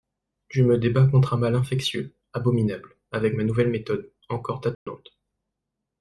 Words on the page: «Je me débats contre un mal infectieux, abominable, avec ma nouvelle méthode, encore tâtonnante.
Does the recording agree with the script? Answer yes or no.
yes